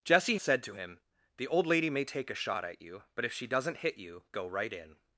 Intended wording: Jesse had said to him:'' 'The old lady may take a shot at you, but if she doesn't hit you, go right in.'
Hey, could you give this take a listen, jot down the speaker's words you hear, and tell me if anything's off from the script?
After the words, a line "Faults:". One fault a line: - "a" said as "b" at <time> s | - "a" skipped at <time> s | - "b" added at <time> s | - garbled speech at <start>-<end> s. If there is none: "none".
Jesse said to him:'' 'The old lady may take a shot at you, but if she doesn't hit you, go right in.'
Faults:
- "had" skipped at 0.4 s